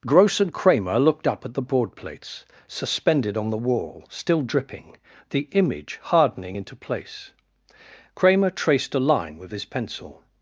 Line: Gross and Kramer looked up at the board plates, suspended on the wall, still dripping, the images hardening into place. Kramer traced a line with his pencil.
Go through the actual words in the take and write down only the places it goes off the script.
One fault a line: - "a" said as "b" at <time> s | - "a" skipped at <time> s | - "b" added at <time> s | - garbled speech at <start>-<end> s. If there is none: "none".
- "images" said as "image" at 5.5 s